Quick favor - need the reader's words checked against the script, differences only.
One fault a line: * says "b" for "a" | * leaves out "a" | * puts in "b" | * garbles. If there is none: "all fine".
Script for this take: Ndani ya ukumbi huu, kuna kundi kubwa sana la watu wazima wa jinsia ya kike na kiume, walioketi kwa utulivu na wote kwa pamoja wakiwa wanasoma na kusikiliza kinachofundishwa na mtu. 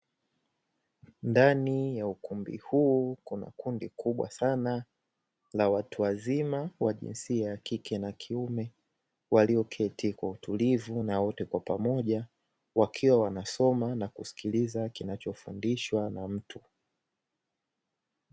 all fine